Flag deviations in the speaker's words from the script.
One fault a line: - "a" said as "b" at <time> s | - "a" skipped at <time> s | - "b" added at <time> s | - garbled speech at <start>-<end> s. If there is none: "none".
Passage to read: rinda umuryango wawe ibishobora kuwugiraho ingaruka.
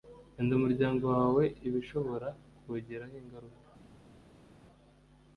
none